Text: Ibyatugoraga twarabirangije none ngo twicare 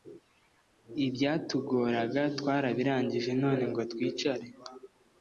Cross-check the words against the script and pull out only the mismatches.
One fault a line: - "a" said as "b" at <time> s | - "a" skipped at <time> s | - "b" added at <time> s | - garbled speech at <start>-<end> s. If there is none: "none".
none